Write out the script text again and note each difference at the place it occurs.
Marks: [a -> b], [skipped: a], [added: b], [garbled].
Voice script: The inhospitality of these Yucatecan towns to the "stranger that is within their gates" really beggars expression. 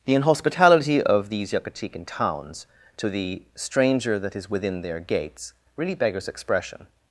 The inhospitality of these Yucatecan towns to the "stranger that is within their gates" really beggars expression.